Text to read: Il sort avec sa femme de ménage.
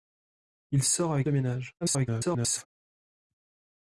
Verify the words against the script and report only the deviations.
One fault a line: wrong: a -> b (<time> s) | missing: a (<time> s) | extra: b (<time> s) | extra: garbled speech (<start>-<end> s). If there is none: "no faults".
missing: sa femme (1.3 s)
extra: garbled speech (1.8-2.7 s)